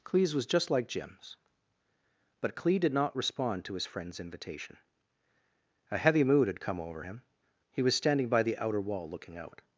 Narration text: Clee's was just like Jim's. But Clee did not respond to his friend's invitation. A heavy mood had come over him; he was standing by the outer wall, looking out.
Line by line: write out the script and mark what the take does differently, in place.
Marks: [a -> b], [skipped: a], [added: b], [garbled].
Clee's was just like Jim's. But Clee did not respond to his friend's invitation. A heavy mood had come over him; he was standing by the outer wall, looking out.